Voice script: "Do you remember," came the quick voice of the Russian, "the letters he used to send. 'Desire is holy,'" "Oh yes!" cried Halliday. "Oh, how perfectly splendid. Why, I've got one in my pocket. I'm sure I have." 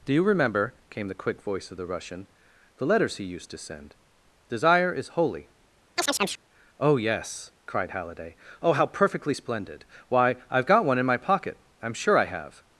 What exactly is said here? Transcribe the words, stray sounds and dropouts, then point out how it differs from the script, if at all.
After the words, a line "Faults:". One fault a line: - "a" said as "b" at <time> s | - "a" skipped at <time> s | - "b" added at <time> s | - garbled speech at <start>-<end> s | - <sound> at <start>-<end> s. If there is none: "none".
"Do you remember," came the quick voice of the Russian, "the letters he used to send. 'Desire is holy,'" "Oh yes!" cried Halliday. "Oh, how perfectly splendid. Why, I've got one in my pocket. I'm sure I have."
Faults:
- chirp at 6.0-6.4 s